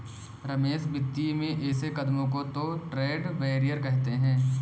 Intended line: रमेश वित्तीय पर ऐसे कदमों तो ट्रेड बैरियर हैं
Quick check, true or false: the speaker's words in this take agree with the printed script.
false